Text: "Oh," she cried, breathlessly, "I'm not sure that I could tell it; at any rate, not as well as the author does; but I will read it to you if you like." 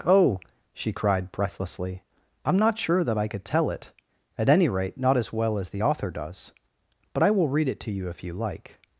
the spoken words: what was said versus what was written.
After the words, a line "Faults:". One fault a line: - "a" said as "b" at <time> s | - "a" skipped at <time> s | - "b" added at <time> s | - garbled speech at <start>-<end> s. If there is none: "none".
"Oh," she cried, breathlessly, "I'm not sure that I could tell it; at any rate, not as well as the author does; but I will read it to you if you like."
Faults:
none